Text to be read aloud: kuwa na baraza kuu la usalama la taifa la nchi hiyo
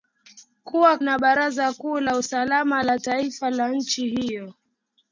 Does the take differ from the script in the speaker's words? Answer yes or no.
no